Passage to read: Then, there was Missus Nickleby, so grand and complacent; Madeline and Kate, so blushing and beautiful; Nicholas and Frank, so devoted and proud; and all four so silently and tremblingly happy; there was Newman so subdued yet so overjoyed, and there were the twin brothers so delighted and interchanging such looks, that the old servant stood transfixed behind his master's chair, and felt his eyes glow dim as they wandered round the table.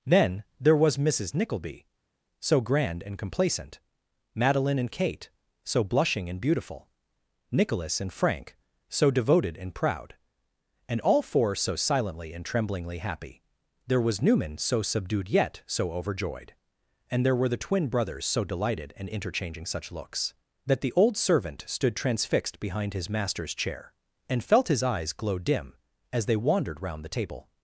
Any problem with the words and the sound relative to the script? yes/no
no